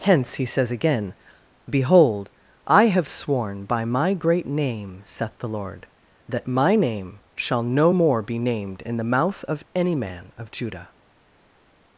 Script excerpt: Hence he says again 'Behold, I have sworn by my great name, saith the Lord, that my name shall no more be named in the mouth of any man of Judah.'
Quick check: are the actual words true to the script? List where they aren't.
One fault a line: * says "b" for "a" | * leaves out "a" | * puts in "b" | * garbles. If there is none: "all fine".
all fine